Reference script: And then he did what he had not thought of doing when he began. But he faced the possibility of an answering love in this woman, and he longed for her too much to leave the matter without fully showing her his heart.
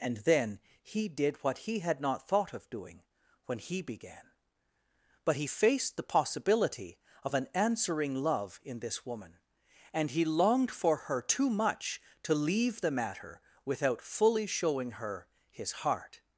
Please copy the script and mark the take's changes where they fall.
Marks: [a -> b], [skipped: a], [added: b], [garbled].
And then he did what he had not thought of doing when he began. But he faced the possibility of an answering love in this woman, and he longed for her too much to leave the matter without fully showing her his heart.